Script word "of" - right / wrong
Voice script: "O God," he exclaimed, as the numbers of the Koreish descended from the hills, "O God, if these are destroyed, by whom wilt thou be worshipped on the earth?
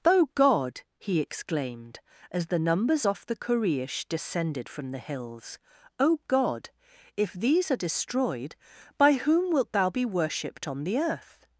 wrong